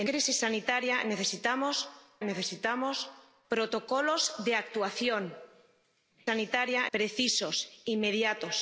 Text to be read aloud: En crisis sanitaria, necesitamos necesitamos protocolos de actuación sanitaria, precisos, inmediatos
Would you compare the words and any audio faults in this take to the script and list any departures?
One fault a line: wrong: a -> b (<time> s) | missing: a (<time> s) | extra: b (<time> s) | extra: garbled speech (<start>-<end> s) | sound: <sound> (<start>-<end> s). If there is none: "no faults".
no faults